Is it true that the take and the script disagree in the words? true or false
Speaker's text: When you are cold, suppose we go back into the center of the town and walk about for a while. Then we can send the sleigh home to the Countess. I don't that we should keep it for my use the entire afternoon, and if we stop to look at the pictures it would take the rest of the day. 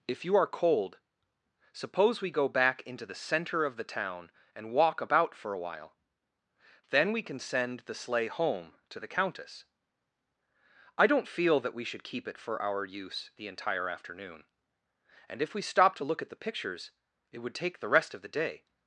true